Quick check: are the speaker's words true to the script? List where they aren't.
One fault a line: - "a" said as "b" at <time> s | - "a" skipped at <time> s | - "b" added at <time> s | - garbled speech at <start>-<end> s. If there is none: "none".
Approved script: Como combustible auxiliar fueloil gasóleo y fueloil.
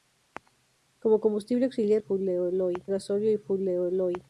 none